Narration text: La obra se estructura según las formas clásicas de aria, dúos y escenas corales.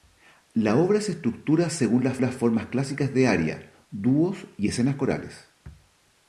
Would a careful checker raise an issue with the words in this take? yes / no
yes